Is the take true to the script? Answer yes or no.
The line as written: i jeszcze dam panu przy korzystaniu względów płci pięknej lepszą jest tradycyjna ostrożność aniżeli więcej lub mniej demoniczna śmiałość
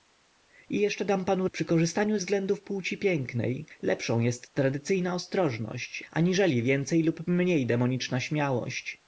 yes